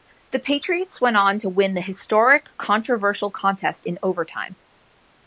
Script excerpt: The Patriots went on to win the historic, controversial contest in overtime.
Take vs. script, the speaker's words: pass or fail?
pass